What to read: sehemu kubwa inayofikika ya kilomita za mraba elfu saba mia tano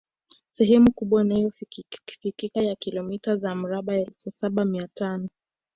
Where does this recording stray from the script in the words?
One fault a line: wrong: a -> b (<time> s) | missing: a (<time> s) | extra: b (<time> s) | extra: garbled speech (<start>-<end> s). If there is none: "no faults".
no faults